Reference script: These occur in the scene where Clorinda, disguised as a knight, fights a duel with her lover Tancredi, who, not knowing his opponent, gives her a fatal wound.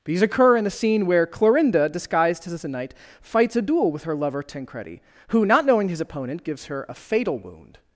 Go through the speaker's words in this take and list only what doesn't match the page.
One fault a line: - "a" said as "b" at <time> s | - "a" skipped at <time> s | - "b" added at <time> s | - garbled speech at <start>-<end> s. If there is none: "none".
none